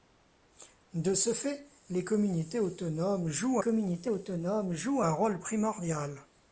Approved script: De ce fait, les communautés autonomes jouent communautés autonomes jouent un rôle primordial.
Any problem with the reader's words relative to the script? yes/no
no